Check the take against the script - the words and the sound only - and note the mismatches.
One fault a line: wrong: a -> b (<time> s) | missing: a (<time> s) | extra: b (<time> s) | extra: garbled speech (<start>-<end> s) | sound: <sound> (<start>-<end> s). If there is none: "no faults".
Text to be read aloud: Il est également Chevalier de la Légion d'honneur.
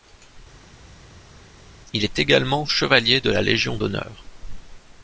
no faults